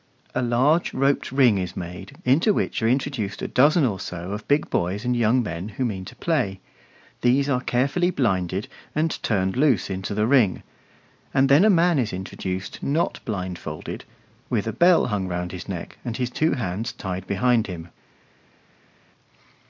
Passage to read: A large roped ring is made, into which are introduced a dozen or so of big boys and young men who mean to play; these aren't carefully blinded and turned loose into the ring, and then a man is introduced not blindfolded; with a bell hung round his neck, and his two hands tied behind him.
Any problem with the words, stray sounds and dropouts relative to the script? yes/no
yes